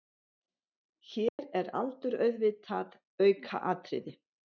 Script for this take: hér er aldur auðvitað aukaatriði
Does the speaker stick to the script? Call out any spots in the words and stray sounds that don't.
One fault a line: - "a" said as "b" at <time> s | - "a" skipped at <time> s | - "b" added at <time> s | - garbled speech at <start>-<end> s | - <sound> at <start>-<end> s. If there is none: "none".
- dropout at 1.3-1.4 s